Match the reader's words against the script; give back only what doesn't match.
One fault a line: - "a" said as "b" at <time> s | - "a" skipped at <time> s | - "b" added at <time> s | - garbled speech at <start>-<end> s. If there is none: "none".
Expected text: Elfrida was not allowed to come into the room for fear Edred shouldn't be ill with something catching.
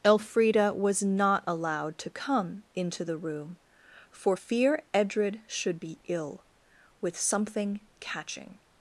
- "shouldn't" said as "should" at 5.5 s